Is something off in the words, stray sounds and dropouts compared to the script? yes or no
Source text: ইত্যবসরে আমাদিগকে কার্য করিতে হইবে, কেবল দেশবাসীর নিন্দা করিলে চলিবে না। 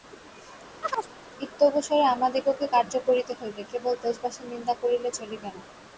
yes